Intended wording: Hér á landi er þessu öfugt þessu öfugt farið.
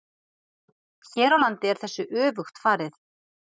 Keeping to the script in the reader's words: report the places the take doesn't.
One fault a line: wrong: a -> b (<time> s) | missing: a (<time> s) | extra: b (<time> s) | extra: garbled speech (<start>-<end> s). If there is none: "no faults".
missing: þessu öfugt (2.6 s)